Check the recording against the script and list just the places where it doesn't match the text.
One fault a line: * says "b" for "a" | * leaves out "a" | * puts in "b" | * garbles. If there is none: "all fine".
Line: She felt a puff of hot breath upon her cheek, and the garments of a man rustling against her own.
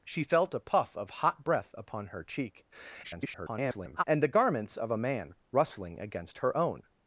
* garbles